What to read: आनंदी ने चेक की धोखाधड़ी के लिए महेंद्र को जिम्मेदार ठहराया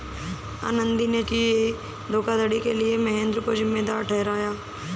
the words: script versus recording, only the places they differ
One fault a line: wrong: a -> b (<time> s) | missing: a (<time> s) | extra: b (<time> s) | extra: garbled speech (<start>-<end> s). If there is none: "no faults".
missing: चेक (1.2 s)